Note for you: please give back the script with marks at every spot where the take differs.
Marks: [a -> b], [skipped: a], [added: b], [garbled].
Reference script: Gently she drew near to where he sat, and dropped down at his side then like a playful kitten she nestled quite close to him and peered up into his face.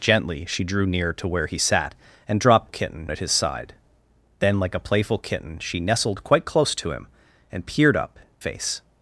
Gently she drew near to where he sat, and dropped [down -> kitten] at his side then like a playful kitten she nestled quite close to him and peered up [skipped: into his] face.